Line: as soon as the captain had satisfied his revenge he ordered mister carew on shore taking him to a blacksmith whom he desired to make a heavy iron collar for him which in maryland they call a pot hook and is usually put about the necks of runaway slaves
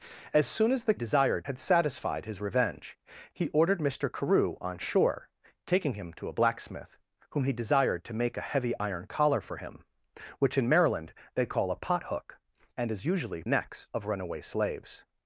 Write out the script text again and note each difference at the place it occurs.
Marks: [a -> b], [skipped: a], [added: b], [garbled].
as soon as the [captain -> desired] had satisfied his revenge he ordered mister carew on shore taking him to a blacksmith whom he desired to make a heavy iron collar for him which in maryland they call a pot hook and is usually [skipped: put about the] necks of runaway slaves